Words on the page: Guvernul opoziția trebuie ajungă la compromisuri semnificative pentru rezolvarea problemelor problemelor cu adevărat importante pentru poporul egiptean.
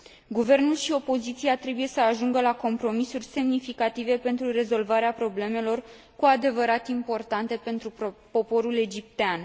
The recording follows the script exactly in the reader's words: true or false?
false